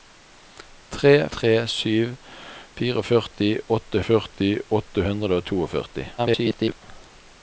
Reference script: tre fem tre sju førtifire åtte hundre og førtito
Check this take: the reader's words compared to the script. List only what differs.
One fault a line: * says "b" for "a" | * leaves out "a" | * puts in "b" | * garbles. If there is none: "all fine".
* leaves out "fem"
* puts in "førtifire åtte"
* garbles